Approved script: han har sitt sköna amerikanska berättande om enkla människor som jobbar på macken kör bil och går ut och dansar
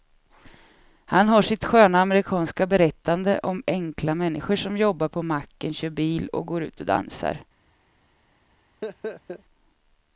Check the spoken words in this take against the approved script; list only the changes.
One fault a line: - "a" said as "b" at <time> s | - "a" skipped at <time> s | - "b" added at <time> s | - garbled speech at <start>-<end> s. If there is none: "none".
none